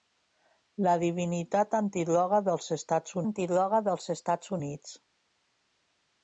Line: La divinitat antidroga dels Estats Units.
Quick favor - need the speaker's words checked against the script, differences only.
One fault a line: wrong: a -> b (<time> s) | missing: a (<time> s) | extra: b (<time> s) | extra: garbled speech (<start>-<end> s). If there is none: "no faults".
extra: antidroga dels Estats (3.2 s)